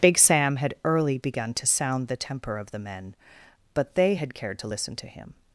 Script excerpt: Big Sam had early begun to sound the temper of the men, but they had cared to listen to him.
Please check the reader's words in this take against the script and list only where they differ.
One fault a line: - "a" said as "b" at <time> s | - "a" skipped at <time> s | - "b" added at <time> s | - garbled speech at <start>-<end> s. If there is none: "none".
none